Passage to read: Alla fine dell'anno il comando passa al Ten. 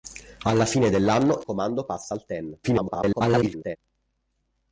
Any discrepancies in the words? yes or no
yes